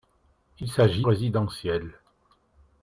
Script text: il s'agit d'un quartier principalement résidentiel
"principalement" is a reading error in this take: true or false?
true